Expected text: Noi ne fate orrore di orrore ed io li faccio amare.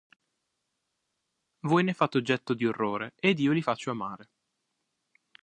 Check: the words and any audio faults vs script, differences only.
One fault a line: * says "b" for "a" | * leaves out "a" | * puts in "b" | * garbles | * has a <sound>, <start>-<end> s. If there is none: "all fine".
* says "Voi" for "Noi"
* says "oggetto" for "orrore"